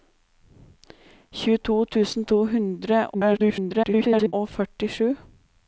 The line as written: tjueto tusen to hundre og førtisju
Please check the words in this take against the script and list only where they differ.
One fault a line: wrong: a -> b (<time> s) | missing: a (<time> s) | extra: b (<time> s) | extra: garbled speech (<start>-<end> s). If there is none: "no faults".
extra: garbled speech (3.1-4.3 s)